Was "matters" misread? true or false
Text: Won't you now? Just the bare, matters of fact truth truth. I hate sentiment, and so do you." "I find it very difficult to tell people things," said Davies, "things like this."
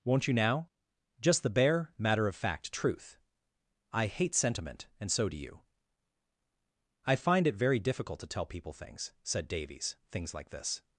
true